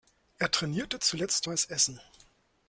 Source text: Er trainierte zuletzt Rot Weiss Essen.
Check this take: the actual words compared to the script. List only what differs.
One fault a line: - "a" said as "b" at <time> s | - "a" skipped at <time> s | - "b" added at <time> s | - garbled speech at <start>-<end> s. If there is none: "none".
- "Rot" skipped at 1.5 s